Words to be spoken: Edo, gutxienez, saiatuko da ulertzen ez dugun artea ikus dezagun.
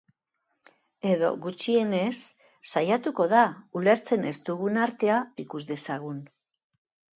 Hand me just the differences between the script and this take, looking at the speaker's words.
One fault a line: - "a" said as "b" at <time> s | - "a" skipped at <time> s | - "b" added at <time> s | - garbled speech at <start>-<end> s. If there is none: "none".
none